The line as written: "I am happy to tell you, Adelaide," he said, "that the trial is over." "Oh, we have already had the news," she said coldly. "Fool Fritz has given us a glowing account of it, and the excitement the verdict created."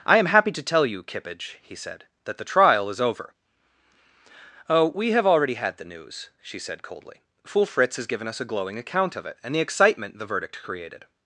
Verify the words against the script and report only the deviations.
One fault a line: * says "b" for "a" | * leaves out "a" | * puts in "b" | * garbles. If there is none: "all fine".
* says "Kippage" for "Adelaide"